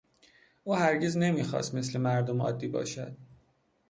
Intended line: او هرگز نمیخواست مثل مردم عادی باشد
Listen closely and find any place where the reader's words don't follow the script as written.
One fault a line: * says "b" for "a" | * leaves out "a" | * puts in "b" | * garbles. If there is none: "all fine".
all fine